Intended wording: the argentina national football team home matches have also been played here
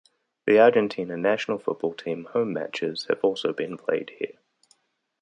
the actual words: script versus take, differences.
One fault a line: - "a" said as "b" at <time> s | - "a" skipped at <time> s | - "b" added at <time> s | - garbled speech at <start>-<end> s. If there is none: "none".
none